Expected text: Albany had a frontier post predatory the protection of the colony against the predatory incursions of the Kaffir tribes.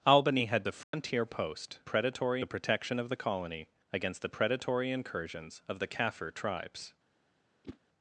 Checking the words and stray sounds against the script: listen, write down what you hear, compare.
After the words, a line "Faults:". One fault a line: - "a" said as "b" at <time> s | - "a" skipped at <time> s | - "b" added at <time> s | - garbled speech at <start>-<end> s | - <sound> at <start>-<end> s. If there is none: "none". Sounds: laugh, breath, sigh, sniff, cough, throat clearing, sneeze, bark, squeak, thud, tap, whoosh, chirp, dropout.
Albany had a frontier post predatory the protection of the colony against the predatory incursions of the Kaffir tribes.
Faults:
- dropout at 0.8-0.9 s
- whoosh at 7.6-7.8 s